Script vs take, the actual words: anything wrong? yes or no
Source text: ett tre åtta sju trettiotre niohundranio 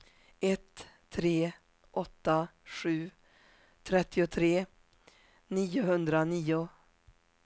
no